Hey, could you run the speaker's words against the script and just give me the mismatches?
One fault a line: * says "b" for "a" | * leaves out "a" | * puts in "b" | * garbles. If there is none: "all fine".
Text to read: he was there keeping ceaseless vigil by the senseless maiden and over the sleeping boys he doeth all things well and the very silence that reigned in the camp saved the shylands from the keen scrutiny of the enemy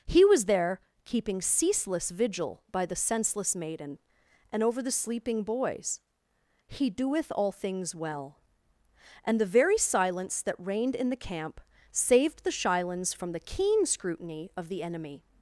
all fine